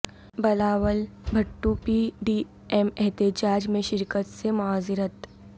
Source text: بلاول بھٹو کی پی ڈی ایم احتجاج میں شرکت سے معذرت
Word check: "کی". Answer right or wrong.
wrong